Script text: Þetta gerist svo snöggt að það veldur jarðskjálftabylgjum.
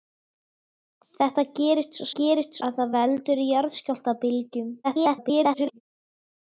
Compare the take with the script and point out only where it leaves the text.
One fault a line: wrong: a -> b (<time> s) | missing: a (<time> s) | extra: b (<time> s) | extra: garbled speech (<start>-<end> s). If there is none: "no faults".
wrong: snöggt -> gerist (2.2 s)
extra: garbled speech (4.8-5.8 s)